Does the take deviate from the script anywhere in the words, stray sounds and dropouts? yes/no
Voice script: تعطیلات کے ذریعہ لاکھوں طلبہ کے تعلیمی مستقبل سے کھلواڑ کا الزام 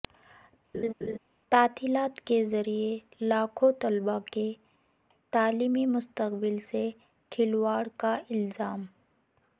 yes